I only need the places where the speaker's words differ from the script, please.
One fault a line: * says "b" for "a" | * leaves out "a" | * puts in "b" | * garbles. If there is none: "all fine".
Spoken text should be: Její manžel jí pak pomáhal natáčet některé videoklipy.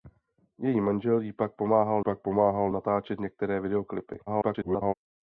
* puts in "pak pomáhal"
* garbles